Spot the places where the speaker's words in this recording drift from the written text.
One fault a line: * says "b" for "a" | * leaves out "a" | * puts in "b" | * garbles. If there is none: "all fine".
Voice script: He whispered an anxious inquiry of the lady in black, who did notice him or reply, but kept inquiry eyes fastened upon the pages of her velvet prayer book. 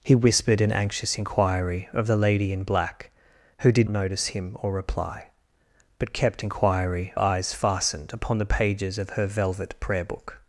all fine